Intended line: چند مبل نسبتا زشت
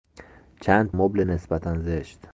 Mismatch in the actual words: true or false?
false